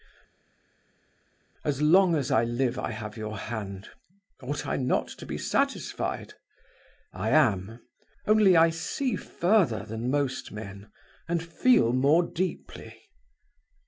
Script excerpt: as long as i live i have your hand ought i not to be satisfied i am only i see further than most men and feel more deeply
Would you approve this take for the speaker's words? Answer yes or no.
yes